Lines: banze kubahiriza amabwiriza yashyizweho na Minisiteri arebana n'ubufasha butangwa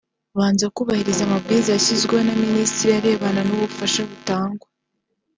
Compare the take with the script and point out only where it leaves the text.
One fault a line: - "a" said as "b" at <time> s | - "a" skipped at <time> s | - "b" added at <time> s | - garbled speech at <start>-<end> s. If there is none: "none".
none